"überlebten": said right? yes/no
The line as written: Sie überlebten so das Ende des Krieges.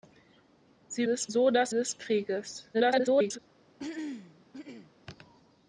no